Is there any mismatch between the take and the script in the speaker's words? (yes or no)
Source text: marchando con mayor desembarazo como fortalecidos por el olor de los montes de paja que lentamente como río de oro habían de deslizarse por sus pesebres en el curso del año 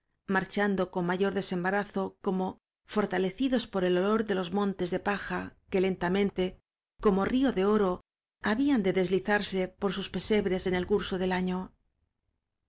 no